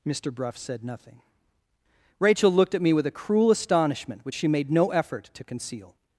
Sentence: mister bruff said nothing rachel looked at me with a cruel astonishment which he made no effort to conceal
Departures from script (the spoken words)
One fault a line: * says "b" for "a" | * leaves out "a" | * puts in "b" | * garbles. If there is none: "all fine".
* says "she" for "he"